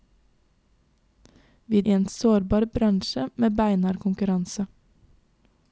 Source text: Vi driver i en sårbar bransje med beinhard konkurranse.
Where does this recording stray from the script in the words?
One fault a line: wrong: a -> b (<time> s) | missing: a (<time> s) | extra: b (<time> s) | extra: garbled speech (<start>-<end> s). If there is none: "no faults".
missing: driver (1.8 s)